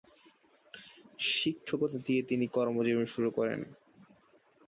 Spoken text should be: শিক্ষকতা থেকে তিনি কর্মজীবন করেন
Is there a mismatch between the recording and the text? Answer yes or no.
yes